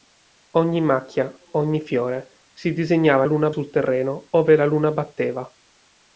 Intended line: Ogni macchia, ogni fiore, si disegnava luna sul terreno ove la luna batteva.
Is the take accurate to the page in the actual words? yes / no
yes